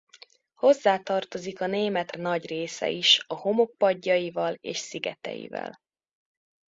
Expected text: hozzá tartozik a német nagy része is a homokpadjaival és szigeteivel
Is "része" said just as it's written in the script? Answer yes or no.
yes